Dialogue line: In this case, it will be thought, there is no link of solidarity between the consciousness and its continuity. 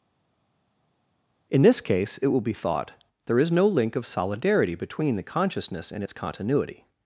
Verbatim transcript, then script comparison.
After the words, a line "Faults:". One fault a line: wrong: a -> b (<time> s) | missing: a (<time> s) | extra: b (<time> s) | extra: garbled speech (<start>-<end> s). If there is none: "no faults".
In this case, it will be thought, there is no link of solidarity between the consciousness and its continuity.
Faults:
no faults